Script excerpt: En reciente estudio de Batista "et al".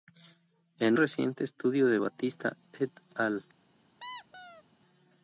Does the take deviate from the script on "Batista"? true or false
false